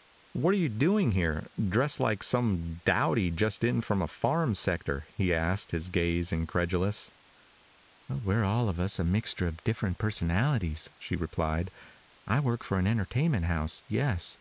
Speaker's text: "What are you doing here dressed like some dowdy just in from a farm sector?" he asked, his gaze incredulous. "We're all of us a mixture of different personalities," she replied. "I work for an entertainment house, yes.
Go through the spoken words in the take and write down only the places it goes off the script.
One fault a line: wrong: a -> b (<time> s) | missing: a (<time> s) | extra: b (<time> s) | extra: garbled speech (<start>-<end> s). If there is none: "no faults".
no faults